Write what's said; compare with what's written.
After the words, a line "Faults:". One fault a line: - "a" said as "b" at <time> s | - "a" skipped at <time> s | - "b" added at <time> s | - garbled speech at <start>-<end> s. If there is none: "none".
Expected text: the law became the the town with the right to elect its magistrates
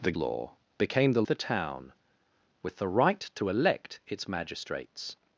the law became the the town with the right to elect its magistrates
Faults:
none